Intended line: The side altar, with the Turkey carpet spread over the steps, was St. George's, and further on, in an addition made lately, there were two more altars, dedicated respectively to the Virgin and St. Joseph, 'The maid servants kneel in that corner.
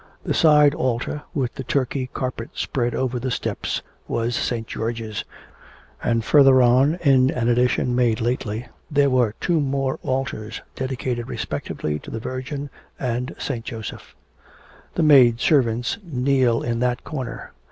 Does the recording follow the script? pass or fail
pass